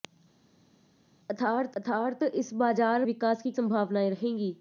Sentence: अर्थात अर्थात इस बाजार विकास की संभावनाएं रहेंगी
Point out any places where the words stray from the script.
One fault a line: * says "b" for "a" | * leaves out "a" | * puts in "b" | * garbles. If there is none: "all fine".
all fine